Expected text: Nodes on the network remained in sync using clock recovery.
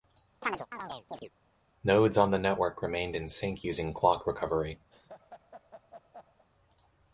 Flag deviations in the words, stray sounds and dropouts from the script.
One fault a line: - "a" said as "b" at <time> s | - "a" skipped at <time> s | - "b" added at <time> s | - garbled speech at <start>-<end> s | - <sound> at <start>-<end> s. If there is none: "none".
- chirp at 0.4-1.3 s
- laugh at 4.9-6.5 s